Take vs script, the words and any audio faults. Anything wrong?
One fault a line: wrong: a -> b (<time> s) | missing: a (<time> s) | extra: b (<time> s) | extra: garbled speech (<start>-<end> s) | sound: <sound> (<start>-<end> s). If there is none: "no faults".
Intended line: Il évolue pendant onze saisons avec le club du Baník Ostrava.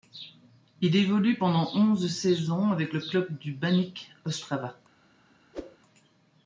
sound: whoosh (5.5-5.8 s)